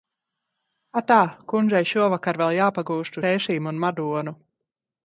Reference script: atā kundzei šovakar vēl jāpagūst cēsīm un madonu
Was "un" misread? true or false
false